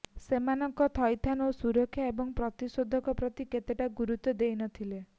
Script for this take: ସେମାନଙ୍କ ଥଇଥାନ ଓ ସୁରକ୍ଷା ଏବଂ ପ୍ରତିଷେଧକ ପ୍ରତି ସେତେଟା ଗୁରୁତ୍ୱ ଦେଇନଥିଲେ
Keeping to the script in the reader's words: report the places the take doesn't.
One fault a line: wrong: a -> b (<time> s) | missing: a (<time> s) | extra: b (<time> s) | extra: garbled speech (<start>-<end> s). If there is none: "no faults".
no faults